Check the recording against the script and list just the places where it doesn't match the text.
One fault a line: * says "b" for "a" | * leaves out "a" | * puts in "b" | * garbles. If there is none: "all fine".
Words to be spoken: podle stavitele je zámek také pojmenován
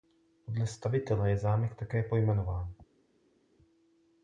all fine